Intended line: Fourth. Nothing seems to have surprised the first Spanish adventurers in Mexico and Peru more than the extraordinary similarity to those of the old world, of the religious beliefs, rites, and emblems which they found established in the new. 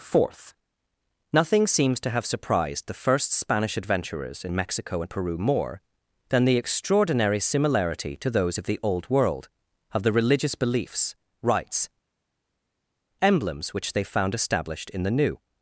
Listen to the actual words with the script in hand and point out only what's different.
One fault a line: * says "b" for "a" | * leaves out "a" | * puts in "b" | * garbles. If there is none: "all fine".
* leaves out "and"